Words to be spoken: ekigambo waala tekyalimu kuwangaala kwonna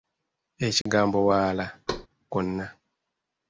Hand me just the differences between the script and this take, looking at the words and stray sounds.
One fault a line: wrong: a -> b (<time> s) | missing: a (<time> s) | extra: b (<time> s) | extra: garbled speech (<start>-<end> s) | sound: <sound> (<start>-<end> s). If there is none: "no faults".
sound: dropout (0.8-0.9 s)
missing: tekyalimu kuwangaala (1.6 s)
sound: thud (1.9-2.1 s)